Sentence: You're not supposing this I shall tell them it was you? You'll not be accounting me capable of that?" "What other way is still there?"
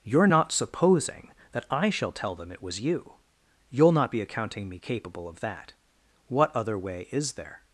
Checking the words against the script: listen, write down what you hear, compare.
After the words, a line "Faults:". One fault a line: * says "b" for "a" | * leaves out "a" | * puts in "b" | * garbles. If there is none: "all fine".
You're not supposing that I shall tell them it was you? You'll not be accounting me capable of that?" "What other way is there?"
Faults:
* says "that" for "this"
* leaves out "still"